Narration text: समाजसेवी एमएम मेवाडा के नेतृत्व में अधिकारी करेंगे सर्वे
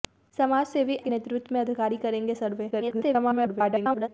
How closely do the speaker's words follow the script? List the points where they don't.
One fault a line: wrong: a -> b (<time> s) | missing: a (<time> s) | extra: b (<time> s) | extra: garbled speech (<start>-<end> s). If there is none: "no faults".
missing: एमएम मेवाडा (0.9 s)
extra: garbled speech (2.7-4.1 s)